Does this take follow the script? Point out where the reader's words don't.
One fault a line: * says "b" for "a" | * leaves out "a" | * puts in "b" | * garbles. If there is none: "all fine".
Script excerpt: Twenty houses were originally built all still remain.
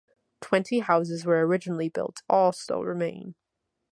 all fine